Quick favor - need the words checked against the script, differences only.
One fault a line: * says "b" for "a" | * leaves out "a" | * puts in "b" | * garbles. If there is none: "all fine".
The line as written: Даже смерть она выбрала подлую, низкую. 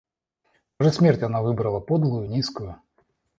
all fine